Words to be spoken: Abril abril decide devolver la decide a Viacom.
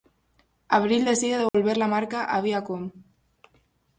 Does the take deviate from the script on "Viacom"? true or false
false